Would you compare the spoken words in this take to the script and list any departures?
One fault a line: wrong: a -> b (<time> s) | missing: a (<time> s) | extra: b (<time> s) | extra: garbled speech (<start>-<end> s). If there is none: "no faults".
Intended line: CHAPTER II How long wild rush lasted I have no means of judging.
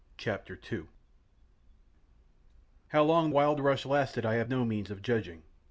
no faults